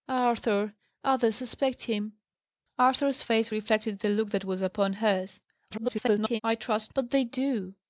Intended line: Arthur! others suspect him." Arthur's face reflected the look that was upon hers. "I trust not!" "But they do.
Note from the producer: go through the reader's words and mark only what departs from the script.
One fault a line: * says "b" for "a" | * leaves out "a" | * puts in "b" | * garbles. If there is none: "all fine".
* garbles
* leaves out "not"